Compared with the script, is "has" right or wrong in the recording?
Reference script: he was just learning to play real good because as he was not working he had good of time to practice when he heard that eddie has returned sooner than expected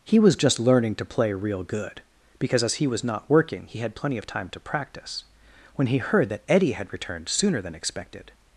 wrong